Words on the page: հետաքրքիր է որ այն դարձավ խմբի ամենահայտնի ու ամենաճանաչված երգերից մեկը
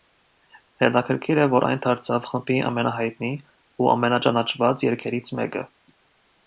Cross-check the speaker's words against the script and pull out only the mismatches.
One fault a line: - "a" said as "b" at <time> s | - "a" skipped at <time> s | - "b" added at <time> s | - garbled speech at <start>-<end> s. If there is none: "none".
none